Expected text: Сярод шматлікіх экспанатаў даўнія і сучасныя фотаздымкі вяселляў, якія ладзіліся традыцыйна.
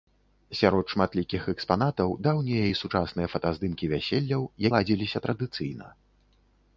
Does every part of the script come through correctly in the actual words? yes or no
no